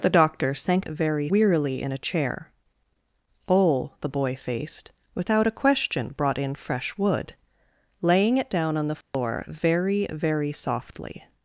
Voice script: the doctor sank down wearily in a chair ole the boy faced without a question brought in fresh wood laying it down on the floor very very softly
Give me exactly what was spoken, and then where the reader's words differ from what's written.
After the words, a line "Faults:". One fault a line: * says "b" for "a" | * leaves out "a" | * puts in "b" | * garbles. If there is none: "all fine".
the doctor sank very wearily in a chair ole the boy faced without a question brought in fresh wood laying it down on the floor very very softly
Faults:
* says "very" for "down"